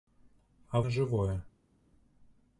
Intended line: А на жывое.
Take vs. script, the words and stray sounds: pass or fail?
pass